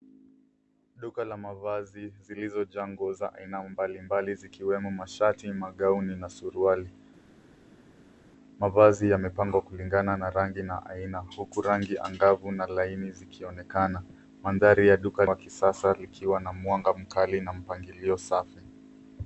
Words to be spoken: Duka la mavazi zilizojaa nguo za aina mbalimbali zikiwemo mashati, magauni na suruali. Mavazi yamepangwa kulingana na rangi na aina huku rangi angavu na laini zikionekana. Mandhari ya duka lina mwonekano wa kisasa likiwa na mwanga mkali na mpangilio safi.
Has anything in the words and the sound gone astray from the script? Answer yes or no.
yes